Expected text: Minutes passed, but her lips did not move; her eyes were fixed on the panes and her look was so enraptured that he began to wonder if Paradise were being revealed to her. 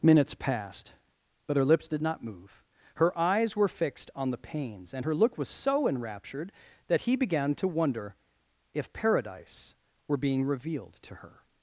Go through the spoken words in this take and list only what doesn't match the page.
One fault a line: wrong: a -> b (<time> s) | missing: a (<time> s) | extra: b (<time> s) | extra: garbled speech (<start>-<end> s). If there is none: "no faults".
no faults